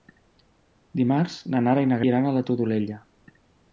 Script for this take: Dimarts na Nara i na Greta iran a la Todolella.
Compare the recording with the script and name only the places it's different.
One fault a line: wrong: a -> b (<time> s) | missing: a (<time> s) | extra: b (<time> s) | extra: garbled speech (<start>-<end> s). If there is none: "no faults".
missing: Greta (2.0 s)